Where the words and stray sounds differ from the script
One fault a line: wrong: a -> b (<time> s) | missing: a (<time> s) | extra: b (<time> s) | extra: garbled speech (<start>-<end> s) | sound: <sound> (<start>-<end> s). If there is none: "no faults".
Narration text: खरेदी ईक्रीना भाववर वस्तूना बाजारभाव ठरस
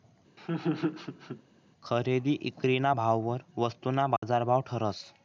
sound: laugh (0.4-1.4 s)
sound: dropout (4.2-4.2 s)